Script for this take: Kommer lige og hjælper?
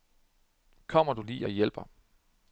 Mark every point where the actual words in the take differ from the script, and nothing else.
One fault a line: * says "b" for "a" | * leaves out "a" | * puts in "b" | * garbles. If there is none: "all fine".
* puts in "du"